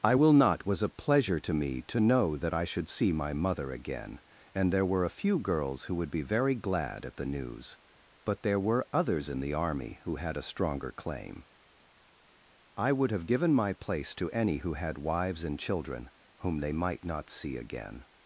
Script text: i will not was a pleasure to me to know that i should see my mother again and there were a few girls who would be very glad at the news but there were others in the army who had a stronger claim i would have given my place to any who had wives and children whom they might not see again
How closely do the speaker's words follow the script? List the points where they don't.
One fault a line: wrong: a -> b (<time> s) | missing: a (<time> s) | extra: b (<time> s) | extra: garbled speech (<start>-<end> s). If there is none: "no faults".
no faults